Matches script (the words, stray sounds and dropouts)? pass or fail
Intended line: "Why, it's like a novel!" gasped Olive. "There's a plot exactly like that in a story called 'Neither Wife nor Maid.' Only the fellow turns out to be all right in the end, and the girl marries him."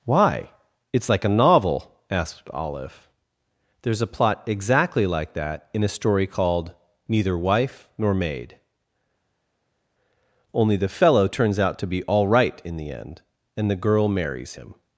fail